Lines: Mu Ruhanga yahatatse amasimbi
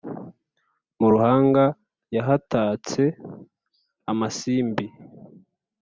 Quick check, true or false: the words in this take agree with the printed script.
true